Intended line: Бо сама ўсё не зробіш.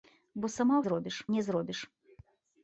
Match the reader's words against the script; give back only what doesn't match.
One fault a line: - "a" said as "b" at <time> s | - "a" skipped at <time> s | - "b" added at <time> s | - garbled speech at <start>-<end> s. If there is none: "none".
- "ўсё" said as "зробіш" at 0.9 s